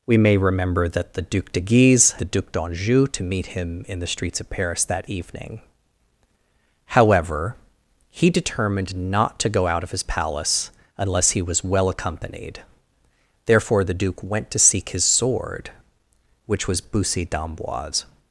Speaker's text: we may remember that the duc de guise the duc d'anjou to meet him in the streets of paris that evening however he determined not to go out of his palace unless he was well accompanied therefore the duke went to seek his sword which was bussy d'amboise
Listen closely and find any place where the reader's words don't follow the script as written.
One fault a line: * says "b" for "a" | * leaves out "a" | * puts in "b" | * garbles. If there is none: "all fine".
all fine